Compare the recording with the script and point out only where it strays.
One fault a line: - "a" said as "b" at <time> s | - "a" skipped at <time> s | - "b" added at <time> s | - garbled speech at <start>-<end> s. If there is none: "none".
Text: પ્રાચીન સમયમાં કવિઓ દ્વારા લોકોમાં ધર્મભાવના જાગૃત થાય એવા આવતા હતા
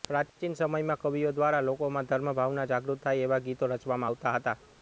- "ગીતો રચવામાં" added at 3.4 s